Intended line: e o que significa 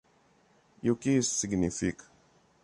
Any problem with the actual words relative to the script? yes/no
yes